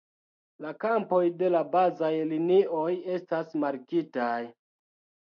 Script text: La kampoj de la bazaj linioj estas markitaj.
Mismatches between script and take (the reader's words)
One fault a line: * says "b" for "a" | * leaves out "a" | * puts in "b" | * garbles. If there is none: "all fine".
all fine